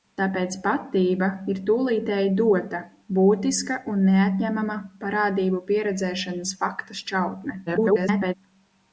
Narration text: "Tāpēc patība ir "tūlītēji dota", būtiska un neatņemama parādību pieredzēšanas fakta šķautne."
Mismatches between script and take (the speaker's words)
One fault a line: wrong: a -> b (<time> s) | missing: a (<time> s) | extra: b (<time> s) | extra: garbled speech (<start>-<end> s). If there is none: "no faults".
extra: garbled speech (7.7-8.3 s)